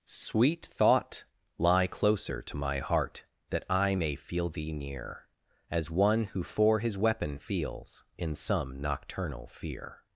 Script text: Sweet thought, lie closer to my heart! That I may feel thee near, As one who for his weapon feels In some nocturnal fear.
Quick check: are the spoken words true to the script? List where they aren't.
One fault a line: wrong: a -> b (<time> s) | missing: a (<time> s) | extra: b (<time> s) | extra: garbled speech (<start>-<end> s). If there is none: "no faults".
no faults